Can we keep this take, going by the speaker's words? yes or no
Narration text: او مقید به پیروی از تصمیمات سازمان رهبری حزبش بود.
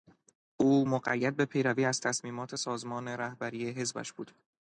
yes